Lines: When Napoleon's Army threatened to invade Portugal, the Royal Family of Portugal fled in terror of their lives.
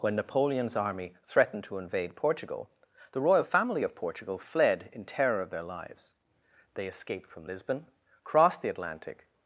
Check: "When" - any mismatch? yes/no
no